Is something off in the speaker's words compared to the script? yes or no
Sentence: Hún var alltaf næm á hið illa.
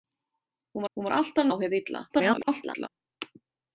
yes